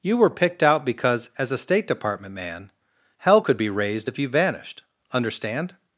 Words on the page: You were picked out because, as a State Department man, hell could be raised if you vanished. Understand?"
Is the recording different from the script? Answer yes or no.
no